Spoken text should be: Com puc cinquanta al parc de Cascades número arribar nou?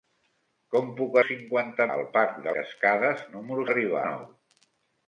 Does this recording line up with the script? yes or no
yes